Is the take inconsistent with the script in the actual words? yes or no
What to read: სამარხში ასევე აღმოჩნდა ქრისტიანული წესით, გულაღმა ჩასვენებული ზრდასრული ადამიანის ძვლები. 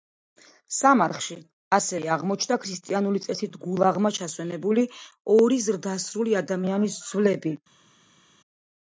yes